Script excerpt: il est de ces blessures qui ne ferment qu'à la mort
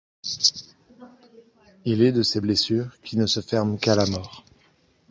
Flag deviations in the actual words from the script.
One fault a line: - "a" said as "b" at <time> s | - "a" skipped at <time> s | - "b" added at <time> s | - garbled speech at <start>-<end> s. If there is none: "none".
- "se" added at 3.3 s